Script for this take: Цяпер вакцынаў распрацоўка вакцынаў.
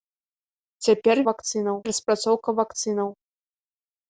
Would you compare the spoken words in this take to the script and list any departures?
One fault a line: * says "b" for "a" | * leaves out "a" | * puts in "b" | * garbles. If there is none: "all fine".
all fine